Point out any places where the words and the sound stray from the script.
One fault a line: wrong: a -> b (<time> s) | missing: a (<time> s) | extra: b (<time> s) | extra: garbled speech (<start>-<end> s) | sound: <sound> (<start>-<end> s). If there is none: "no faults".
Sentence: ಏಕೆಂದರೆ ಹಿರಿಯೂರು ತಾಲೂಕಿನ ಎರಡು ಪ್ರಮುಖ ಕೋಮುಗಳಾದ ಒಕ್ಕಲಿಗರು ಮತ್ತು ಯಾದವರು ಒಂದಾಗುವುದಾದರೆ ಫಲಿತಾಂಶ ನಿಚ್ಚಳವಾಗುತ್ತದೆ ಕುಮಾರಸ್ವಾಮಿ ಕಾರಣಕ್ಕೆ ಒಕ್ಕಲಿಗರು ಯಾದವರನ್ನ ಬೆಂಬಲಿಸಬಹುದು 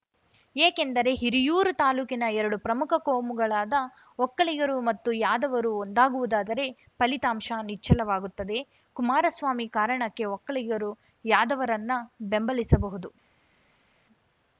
no faults